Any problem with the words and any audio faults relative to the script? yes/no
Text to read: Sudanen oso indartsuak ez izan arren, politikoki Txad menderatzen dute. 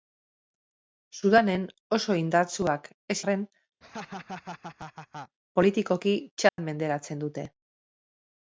yes